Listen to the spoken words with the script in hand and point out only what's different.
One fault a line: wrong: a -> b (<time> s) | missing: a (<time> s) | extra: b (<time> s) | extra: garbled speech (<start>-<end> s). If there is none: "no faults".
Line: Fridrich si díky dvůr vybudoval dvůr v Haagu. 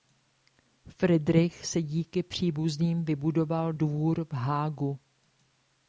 wrong: dvůr -> příbuzným (2.2 s)